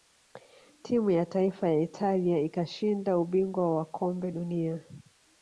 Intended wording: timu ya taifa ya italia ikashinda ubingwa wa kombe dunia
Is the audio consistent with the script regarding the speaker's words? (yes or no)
yes